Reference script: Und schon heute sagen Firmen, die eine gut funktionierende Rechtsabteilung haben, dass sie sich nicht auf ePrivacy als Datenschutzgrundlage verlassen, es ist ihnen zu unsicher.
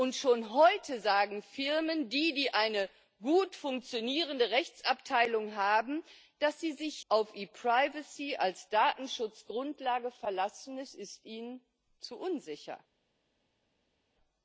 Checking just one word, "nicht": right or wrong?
wrong